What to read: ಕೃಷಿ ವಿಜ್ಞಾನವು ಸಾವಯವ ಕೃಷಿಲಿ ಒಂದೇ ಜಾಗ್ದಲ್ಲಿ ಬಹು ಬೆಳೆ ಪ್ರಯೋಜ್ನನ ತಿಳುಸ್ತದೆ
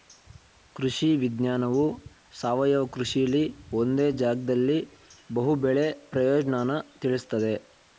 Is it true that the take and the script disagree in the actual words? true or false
false